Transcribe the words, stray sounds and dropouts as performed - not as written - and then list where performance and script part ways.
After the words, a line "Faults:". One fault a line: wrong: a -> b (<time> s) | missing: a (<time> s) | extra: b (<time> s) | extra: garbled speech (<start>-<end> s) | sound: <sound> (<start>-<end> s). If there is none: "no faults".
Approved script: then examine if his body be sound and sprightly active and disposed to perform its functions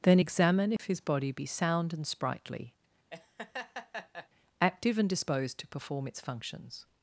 then examine if his body be sound and sprightly active and disposed to perform its functions
Faults:
sound: dropout (0.8-0.8 s)
sound: laugh (3.1-4.3 s)